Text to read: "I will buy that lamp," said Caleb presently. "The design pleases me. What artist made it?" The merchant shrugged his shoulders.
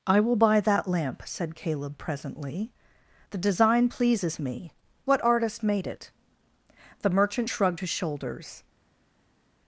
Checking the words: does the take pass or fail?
pass